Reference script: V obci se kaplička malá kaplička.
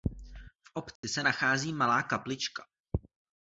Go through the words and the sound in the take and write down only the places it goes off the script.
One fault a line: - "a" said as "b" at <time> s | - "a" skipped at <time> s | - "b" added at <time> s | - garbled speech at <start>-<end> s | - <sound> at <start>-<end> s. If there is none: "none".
- dropout at 1.0-1.0 s
- "kaplička" said as "nachází" at 1.2 s